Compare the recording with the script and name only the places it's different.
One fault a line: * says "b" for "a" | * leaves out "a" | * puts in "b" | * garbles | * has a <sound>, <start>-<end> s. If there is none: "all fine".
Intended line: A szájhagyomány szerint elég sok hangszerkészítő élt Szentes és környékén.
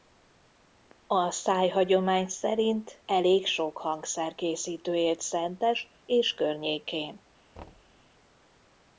* has a thud, 7.6-8.0 s